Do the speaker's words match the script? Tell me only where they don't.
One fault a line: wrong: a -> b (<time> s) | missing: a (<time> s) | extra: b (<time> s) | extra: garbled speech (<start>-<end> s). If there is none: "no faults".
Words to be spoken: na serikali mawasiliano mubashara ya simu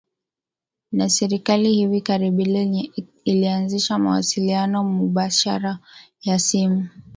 extra: hivi karibuni ilianzisha (1.7 s)